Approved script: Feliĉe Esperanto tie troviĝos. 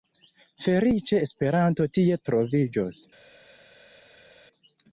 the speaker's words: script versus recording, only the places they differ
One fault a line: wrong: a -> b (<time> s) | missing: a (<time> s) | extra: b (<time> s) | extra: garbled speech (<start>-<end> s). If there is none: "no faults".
no faults